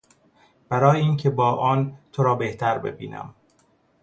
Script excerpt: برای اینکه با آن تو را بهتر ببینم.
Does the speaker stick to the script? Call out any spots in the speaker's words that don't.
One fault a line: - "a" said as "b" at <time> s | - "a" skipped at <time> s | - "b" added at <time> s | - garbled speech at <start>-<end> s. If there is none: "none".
none